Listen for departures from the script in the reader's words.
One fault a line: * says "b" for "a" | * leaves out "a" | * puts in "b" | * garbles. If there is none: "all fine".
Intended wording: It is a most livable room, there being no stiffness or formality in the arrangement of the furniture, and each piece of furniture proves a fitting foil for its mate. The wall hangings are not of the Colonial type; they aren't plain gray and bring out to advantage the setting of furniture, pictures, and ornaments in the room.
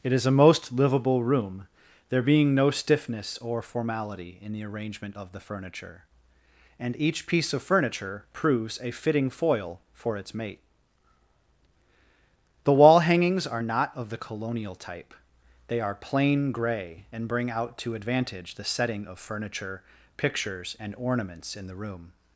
* says "are" for "aren't"